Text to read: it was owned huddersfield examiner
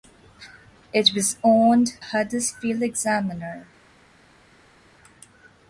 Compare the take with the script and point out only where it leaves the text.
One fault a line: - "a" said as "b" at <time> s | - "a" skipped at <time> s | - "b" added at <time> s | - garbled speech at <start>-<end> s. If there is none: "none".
none